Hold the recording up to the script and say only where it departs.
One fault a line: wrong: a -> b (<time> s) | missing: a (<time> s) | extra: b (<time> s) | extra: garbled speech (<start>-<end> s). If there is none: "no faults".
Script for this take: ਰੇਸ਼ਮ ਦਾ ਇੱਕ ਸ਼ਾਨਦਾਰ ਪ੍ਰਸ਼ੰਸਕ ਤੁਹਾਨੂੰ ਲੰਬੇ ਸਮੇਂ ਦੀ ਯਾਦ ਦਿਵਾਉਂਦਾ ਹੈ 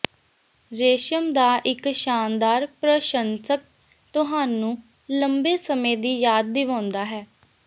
no faults